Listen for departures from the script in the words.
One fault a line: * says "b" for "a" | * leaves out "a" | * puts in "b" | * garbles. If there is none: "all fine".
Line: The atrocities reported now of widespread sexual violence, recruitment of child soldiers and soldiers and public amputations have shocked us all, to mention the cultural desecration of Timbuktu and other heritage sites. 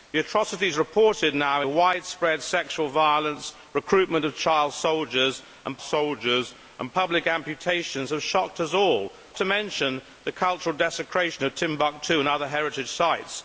all fine